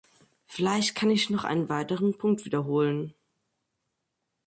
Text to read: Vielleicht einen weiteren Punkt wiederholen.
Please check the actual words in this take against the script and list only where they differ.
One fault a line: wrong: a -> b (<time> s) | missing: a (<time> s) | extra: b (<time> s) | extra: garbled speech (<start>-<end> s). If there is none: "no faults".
extra: kann ich noch (0.9 s)